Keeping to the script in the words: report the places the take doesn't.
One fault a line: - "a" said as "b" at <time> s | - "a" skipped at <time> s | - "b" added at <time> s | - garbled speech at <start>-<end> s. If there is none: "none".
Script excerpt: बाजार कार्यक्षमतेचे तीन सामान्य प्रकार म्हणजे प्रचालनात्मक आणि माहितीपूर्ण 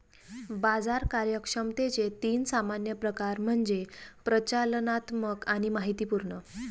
none